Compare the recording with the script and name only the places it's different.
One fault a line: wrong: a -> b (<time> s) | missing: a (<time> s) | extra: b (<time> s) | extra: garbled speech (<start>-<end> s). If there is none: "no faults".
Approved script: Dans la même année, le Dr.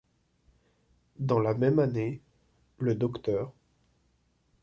no faults